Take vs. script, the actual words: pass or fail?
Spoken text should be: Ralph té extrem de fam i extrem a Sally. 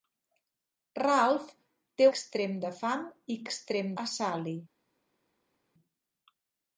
pass